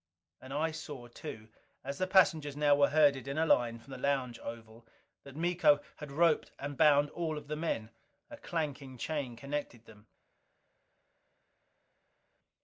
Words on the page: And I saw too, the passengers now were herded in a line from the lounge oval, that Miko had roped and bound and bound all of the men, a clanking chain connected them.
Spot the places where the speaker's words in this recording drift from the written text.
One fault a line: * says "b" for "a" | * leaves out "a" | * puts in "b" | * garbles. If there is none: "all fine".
* puts in "as"
* leaves out "and bound"